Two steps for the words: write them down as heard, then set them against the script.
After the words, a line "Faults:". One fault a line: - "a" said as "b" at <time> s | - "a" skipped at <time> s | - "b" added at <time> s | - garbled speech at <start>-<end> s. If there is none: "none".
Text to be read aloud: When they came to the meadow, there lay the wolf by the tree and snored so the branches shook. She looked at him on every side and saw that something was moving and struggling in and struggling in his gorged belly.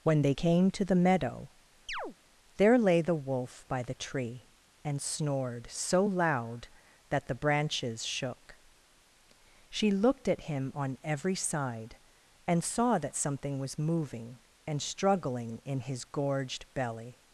When they came to the meadow, there lay the wolf by the tree and snored so loud that the branches shook. She looked at him on every side and saw that something was moving and struggling in his gorged belly.
Faults:
- "loud that" added at 6.0 s
- "and struggling in" skipped at 15.8 s